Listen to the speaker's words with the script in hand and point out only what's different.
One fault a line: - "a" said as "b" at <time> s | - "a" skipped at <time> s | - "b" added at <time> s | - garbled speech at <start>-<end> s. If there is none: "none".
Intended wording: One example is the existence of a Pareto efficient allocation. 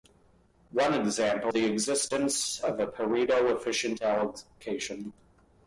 - "is" skipped at 1.5 s